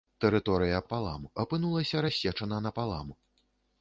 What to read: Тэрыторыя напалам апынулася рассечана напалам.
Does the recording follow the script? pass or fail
pass